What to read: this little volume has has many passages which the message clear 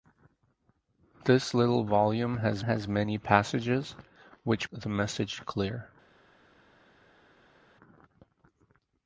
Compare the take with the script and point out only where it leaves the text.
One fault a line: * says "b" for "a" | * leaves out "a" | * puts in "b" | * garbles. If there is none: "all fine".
all fine